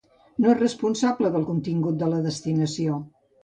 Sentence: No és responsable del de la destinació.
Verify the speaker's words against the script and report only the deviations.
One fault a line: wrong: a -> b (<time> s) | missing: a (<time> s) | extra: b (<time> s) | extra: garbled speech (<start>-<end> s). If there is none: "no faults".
extra: contingut (1.5 s)